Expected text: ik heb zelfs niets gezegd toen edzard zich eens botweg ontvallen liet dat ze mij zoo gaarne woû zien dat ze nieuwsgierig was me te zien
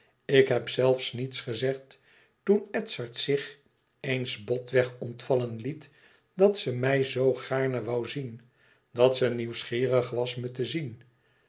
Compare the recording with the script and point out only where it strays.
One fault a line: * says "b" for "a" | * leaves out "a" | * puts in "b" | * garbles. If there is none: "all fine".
all fine